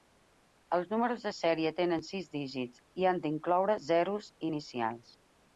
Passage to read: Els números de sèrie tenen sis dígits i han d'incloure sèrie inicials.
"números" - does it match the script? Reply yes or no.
yes